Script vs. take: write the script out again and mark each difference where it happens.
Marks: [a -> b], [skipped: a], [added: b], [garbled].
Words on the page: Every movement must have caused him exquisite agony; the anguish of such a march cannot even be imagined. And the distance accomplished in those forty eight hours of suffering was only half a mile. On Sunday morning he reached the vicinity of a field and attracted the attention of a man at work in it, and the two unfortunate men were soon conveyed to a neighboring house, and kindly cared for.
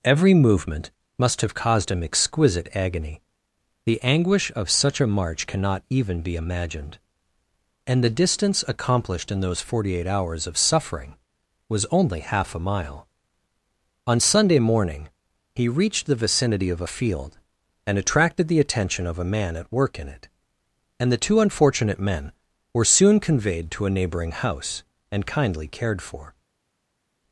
Every movement must have caused him exquisite agony; the anguish of such a march cannot even be imagined. And the distance accomplished in those forty eight hours of suffering was only half a mile. On Sunday morning he reached the vicinity of a field and attracted the attention of a man at work in it, and the two unfortunate men were soon conveyed to a neighboring house, and kindly cared for.